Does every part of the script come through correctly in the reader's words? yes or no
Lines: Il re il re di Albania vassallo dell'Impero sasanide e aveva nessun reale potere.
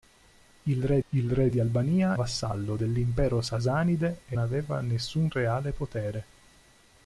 yes